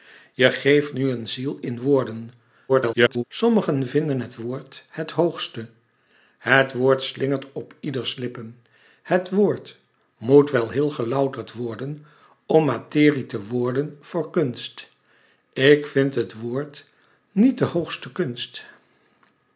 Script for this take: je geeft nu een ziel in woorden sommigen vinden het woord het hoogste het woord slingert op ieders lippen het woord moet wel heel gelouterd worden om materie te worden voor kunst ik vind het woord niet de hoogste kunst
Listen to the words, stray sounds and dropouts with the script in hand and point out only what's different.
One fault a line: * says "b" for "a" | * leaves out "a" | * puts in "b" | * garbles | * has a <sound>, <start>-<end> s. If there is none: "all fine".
* garbles